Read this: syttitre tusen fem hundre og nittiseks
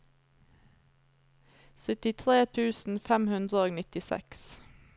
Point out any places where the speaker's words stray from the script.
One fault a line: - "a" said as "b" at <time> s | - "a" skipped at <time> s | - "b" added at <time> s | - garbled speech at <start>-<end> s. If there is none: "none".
none